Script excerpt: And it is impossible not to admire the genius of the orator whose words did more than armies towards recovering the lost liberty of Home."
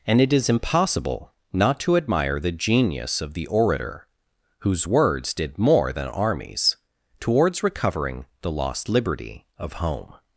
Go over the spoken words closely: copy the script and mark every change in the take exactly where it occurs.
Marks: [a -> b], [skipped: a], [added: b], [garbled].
And it is impossible not to admire the genius of the orator whose words did more than armies towards recovering the lost liberty of Home."